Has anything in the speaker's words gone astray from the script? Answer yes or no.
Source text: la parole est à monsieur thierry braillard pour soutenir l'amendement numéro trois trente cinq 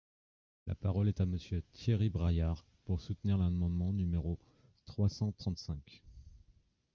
yes